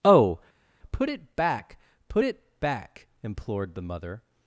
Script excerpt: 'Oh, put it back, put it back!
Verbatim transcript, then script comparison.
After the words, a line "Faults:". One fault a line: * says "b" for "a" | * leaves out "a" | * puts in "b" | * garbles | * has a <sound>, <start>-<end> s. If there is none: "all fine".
'Oh, put it back, put it back! implored the mother
Faults:
* puts in "implored the mother"